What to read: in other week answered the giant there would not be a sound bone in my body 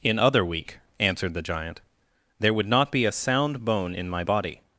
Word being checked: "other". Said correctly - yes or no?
yes